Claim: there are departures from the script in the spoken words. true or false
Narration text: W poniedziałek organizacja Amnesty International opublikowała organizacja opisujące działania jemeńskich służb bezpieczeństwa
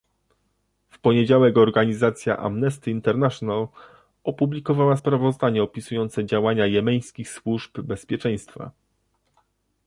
true